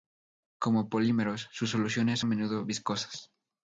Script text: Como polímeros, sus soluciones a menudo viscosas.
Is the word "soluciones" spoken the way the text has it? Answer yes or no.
yes